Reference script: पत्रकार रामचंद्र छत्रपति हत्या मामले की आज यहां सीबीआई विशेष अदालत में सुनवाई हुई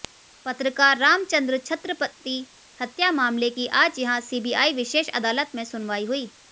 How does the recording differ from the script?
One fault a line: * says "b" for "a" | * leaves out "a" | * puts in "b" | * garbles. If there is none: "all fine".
all fine